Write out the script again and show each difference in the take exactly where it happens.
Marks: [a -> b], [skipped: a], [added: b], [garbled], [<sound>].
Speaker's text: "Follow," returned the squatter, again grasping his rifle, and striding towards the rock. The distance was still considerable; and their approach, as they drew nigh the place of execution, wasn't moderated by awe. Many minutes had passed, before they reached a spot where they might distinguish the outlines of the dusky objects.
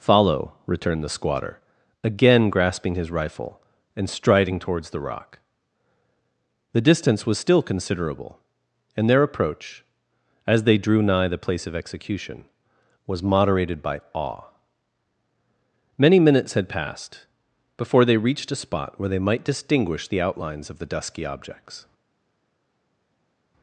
"Follow," returned the squatter, again grasping his rifle, and striding towards the rock. The distance was still considerable; and their approach, as they drew nigh the place of execution, [wasn't -> was] moderated by awe. Many minutes had passed, before they reached a spot where they might distinguish the outlines of the dusky objects.